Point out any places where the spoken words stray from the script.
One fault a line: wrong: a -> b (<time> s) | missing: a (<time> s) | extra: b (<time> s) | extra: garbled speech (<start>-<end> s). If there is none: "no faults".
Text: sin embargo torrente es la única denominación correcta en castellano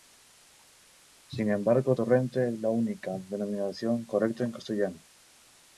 no faults